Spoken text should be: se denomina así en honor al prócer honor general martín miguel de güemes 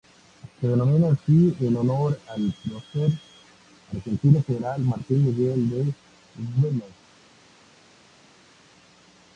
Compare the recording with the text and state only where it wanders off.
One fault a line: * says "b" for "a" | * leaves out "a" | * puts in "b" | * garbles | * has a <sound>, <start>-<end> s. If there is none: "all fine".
* says "argentino" for "honor"